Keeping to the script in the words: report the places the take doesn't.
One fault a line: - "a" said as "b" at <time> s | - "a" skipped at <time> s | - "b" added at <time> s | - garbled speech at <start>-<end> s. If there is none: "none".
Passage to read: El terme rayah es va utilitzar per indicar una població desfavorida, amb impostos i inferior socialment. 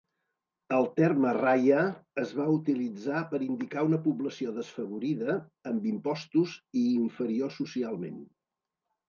none